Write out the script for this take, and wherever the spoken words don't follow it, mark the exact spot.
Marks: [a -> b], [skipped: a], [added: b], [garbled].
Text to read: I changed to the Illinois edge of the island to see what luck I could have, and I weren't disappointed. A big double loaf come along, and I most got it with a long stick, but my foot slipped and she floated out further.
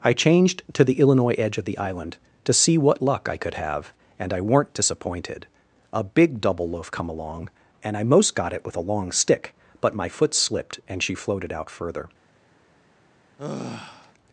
I changed to the Illinois edge of the island to see what luck I could have, and I weren't disappointed. A big double loaf come along, and I most got it with a long stick, but my foot slipped and she floated out further.